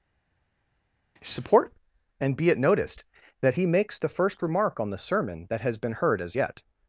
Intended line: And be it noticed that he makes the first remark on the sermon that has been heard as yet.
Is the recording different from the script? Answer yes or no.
yes